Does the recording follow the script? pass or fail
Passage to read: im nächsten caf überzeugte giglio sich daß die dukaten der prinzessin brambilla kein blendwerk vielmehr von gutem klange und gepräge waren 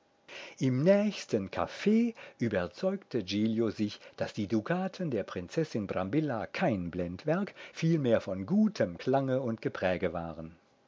pass